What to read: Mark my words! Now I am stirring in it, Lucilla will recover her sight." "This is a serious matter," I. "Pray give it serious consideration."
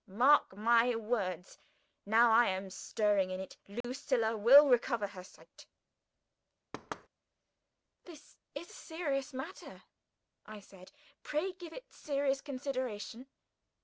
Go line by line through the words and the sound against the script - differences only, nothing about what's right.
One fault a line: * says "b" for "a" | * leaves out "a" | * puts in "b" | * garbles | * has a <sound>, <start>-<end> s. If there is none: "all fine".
* has a dropout, 3.8-3.8 s
* has a thud, 6.7-7.1 s
* puts in "said"